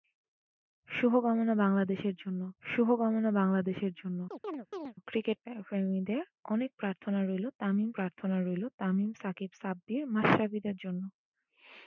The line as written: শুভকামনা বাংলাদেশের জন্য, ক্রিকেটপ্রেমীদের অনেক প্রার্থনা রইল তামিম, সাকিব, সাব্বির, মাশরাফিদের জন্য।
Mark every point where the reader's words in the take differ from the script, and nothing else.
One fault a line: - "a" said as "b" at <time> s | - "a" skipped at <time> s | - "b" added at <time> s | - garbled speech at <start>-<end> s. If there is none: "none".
- "শুভকামনা বাংলাদেশের জন্য" added at 2.6 s
- "প্রার্থনা রইল তামিম" added at 7.9 s